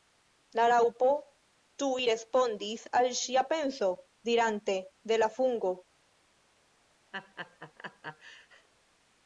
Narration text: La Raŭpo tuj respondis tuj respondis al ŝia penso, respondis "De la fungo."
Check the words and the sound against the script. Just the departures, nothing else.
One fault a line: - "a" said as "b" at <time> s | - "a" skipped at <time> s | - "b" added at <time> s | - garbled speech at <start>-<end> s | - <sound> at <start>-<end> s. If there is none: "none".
- "tuj respondis" skipped at 2.9 s
- "respondis" said as "dirante" at 4.3 s
- laugh at 7.1-8.7 s